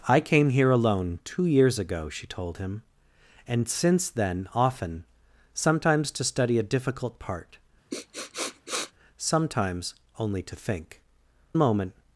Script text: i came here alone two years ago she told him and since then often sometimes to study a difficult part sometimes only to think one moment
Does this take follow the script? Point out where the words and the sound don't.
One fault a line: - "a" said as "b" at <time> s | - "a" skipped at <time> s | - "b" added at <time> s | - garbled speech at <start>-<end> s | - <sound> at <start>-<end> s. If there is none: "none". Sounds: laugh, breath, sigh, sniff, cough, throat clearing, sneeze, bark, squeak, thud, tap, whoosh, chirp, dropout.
- sniff at 7.9-8.9 s
- "one" skipped at 11.0 s